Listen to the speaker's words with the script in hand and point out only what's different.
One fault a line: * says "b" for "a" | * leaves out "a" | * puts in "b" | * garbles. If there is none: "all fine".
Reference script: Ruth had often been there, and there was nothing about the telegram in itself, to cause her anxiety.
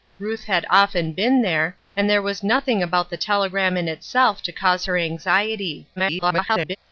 * garbles